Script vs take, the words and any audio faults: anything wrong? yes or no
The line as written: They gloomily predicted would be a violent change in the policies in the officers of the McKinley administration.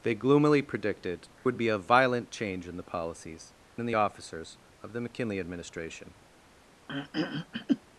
yes